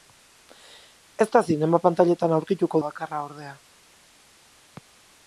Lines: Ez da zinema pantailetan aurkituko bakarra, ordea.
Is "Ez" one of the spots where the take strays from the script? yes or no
no